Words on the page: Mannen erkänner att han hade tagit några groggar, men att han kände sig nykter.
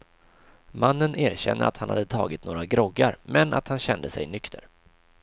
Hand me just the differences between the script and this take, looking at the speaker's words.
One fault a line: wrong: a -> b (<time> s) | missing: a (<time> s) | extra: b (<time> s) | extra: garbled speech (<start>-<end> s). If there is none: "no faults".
no faults